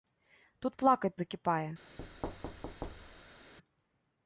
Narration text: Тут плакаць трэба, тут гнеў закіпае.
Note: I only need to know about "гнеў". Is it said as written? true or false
false